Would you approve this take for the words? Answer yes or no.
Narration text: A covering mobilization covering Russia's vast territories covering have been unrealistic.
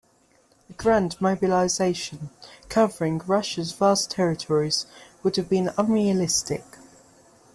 no